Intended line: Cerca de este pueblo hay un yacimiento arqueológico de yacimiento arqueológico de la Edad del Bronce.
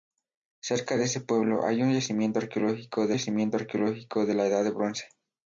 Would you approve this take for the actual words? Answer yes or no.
yes